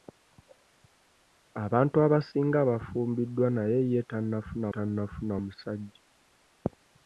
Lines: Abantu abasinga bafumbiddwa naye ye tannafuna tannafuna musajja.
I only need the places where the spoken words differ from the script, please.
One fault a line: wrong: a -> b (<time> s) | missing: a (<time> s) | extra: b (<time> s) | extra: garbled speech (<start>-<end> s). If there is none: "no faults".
no faults